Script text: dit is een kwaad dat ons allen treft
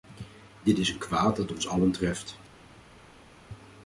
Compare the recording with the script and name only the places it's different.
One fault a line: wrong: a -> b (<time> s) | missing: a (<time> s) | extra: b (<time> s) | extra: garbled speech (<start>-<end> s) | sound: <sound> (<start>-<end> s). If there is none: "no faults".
no faults